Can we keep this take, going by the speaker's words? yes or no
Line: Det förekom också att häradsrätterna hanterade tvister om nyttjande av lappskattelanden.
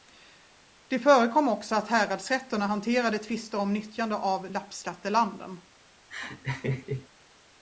yes